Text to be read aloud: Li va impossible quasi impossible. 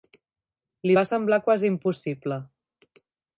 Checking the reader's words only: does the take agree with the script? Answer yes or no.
no